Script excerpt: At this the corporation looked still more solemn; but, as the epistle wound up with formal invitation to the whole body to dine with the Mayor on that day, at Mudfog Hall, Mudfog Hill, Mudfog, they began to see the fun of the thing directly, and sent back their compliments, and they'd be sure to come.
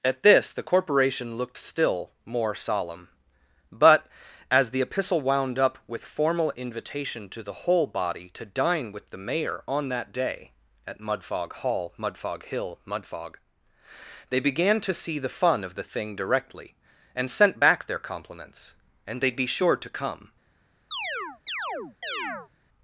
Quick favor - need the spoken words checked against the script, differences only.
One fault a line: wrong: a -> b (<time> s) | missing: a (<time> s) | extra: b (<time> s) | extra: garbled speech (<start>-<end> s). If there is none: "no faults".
no faults